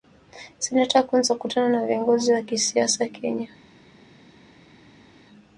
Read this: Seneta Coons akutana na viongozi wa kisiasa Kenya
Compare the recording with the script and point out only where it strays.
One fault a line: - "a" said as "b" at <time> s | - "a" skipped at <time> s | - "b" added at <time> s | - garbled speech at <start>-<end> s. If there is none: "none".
none